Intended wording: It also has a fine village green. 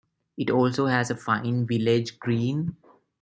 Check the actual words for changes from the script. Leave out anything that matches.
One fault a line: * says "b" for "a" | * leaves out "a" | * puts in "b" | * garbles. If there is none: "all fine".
all fine